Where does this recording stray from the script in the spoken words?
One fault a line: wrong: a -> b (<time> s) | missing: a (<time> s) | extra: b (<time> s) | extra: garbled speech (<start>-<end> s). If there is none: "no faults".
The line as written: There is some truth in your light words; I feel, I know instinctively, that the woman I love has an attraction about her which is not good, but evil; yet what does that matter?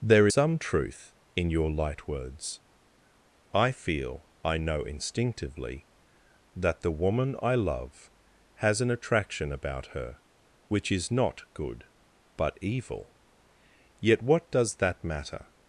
missing: is (0.3 s)